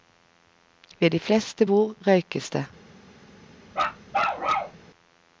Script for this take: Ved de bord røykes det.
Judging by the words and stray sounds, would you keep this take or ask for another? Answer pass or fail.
fail